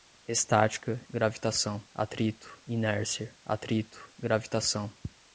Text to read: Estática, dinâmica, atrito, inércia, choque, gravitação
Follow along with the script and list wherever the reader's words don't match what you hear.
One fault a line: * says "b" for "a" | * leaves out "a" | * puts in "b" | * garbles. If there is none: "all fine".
* says "gravitação" for "dinâmica"
* says "atrito" for "choque"